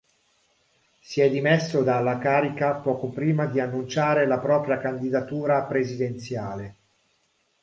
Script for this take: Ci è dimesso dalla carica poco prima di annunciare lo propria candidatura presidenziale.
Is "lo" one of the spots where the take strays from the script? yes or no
yes